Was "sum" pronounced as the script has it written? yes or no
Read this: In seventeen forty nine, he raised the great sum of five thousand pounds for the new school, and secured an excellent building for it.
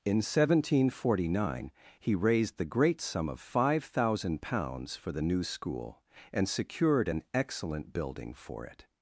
yes